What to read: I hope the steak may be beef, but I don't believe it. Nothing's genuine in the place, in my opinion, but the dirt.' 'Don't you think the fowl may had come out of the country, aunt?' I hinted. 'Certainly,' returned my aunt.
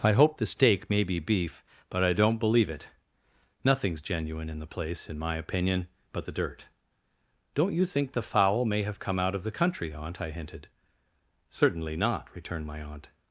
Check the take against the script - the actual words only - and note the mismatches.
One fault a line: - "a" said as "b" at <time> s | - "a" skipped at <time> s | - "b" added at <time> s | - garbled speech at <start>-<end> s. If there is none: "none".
- "had" said as "have" at 8.8 s
- "not" added at 12.0 s